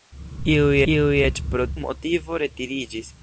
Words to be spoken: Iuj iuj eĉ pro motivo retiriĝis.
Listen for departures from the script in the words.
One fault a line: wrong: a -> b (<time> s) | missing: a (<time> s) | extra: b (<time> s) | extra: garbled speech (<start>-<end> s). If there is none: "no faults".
no faults